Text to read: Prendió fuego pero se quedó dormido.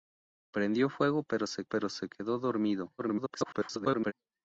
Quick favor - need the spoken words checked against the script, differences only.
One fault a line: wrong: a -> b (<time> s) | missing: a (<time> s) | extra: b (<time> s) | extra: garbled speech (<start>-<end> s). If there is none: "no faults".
extra: pero se (1.6 s)
extra: garbled speech (3.0-4.1 s)